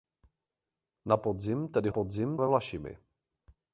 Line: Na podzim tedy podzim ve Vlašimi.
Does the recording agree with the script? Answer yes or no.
yes